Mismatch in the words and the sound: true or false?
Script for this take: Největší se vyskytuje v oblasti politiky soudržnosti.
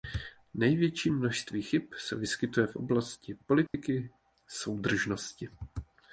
true